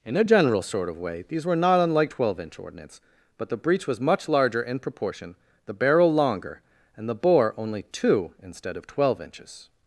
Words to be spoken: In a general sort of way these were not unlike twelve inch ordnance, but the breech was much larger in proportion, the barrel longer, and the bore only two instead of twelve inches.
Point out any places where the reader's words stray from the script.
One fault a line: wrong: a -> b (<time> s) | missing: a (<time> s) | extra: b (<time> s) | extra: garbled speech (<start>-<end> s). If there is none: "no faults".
no faults